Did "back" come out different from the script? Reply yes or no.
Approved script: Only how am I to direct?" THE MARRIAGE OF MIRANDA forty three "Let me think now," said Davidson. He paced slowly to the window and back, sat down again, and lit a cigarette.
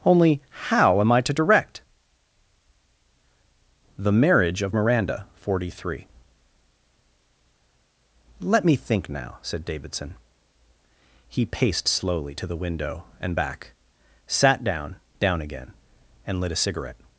no